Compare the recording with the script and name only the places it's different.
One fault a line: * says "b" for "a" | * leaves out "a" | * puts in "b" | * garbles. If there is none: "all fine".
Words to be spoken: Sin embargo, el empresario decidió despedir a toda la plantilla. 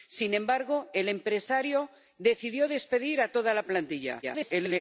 * garbles